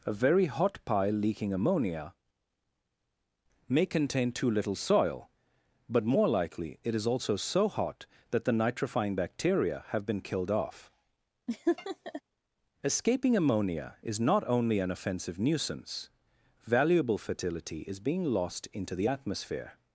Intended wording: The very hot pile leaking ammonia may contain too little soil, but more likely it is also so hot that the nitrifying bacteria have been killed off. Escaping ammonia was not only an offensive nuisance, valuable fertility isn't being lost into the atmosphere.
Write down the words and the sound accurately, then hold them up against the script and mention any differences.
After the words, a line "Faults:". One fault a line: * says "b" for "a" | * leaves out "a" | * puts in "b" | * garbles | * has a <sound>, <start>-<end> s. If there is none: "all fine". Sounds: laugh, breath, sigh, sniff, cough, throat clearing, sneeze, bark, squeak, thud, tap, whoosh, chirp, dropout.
A very hot pile leaking ammonia may contain too little soil, but more likely it is also so hot that the nitrifying bacteria have been killed off. Escaping ammonia is not only an offensive nuisance, valuable fertility is being lost into the atmosphere.
Faults:
* says "A" for "The"
* has a laugh, 11.5-12.2 s
* says "is" for "was"
* says "is" for "isn't"